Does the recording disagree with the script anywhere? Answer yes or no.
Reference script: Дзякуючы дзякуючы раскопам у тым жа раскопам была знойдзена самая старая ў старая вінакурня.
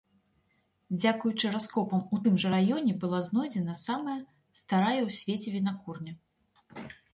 yes